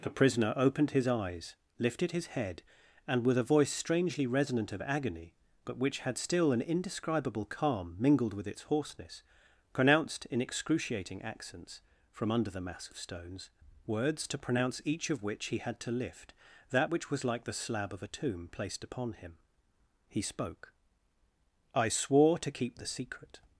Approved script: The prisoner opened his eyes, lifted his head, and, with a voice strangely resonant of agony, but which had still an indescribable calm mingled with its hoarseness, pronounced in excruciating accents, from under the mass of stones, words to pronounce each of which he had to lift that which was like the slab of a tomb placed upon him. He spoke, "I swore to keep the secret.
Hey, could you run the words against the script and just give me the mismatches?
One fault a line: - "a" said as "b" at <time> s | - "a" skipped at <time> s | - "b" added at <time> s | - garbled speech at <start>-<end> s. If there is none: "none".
none